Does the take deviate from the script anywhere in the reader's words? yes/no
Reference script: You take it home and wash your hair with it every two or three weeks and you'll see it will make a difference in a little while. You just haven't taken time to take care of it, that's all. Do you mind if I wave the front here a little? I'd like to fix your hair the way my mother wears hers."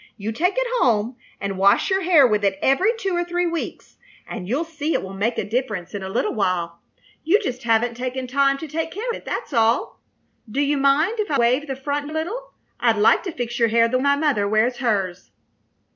yes